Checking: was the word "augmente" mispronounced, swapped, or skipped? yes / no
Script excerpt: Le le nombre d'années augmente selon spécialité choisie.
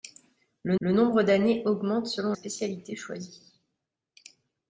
no